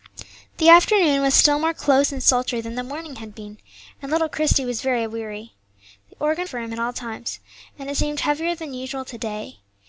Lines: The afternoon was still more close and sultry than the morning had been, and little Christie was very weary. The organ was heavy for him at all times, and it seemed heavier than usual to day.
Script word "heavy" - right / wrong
wrong